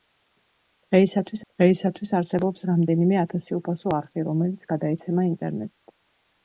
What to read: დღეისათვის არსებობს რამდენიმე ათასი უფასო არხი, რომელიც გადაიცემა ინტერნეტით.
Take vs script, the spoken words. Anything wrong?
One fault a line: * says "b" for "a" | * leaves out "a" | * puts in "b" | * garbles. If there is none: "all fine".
* puts in "დღეისათვის"